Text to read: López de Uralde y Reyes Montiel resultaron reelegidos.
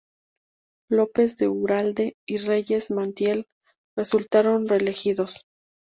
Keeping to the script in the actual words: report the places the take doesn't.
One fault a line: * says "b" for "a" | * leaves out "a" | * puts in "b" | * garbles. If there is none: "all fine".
all fine